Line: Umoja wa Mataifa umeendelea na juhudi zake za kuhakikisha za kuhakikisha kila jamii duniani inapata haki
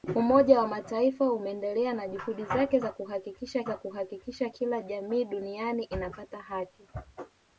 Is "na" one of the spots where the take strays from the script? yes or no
no